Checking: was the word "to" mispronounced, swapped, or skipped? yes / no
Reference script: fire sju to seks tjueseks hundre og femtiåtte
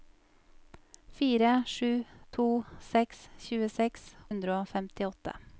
no